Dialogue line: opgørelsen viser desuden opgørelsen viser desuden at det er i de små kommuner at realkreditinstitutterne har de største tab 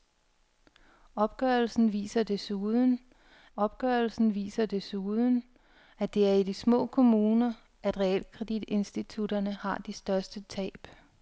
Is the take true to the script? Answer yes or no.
yes